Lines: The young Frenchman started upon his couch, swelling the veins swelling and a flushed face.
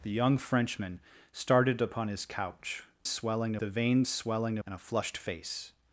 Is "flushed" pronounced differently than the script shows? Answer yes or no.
no